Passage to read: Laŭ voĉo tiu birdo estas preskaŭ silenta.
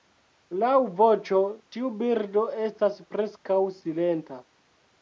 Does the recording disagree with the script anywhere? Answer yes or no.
no